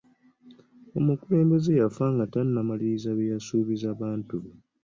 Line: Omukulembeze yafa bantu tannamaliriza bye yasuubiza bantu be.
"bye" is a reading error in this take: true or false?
false